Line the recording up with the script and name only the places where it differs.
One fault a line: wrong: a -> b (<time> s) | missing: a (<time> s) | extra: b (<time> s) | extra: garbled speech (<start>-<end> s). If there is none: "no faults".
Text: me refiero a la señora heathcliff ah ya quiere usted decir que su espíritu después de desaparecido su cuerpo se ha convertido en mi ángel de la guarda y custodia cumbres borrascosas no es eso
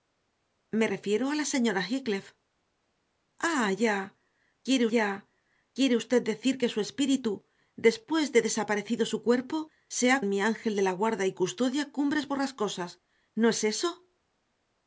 extra: ya quiere (5.0 s)
missing: convertido (10.2 s)